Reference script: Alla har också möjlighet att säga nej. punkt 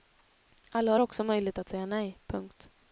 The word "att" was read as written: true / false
true